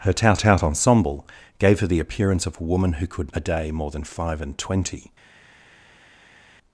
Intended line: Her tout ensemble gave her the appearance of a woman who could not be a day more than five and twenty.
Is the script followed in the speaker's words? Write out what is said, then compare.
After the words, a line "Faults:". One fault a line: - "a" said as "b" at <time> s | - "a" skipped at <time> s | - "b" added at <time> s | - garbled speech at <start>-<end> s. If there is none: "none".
Her tout tout ensemble gave her the appearance of a woman who could a day more than five and twenty.
Faults:
- "tout" added at 0.3 s
- "not be" skipped at 3.3 s